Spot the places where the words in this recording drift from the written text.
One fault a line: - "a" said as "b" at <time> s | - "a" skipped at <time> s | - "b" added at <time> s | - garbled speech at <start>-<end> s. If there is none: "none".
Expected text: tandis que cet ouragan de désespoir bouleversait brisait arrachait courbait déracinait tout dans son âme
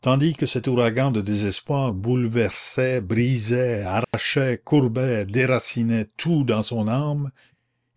none